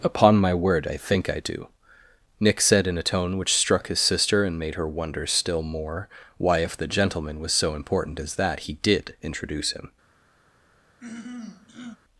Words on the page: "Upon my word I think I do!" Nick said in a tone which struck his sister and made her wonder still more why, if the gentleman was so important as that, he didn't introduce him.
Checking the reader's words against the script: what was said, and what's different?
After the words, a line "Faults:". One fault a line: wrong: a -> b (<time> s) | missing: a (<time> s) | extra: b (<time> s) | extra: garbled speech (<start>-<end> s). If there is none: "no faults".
"Upon my word I think I do!" Nick said in a tone which struck his sister and made her wonder still more why, if the gentleman was so important as that, he did introduce him.
Faults:
wrong: didn't -> did (8.7 s)